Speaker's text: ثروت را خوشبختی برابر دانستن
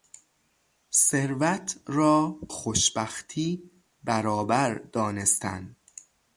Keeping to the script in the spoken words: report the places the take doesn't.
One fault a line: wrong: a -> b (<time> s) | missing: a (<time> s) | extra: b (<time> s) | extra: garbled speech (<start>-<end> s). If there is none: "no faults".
no faults